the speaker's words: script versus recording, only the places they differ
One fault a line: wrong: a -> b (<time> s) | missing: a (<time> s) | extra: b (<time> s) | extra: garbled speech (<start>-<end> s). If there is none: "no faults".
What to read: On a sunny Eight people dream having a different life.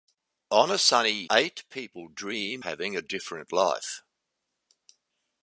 no faults